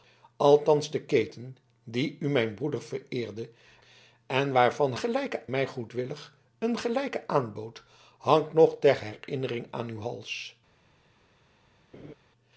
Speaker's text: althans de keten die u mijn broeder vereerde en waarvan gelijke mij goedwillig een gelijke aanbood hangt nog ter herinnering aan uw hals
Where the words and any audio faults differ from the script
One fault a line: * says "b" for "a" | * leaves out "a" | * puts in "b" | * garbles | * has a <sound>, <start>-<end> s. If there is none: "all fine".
* has a laugh, 11.9-12.1 s